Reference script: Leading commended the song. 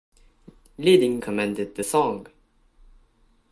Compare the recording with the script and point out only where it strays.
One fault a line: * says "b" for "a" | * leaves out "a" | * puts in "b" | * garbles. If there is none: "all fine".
all fine